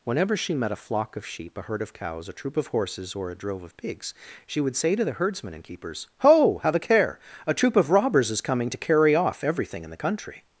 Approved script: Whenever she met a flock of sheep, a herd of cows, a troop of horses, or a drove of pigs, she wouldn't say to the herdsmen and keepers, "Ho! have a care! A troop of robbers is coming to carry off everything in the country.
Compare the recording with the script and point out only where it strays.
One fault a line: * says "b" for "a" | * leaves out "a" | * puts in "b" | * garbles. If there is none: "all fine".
* says "would" for "wouldn't"